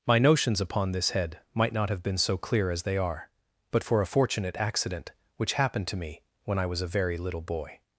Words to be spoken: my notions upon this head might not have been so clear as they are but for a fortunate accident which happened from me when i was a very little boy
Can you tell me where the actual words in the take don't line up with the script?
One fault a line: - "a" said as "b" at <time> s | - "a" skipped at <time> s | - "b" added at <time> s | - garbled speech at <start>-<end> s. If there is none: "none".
- "from" said as "to" at 5.9 s